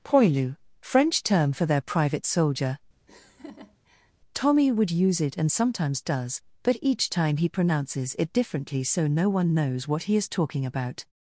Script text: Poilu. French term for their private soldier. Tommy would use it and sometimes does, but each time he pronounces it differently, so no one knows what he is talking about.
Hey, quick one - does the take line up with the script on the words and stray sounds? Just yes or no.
no